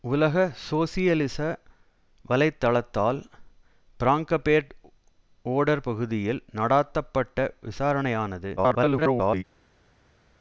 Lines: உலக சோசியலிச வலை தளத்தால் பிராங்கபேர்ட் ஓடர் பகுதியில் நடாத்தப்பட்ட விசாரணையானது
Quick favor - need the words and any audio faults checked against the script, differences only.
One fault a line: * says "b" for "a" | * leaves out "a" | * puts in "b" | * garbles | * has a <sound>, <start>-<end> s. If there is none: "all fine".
* garbles